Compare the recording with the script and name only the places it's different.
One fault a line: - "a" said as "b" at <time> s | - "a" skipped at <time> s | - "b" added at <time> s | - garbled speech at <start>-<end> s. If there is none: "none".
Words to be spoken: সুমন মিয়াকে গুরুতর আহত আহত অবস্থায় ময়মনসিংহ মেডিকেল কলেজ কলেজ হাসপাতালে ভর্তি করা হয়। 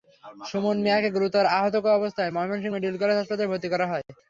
- "আহত" skipped at 1.8 s
- "কলেজ" skipped at 3.2 s